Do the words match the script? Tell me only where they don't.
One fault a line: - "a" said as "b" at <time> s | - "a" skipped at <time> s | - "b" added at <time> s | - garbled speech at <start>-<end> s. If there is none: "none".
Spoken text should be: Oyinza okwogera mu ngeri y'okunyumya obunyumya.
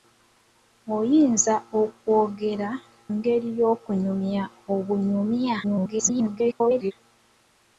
- "mu" skipped at 2.7 s
- garbled speech at 5.6-6.9 s